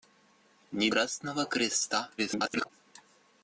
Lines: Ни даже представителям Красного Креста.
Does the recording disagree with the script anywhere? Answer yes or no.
yes